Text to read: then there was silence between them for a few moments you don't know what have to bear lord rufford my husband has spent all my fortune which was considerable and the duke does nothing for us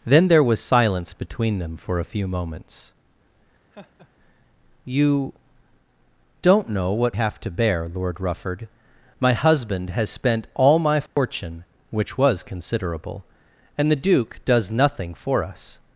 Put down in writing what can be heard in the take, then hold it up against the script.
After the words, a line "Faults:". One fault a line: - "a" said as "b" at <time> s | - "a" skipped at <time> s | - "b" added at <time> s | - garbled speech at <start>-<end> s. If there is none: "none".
then there was silence between them for a few moments you don't know what have to bear lord rufford my husband has spent all my fortune which was considerable and the duke does nothing for us
Faults:
none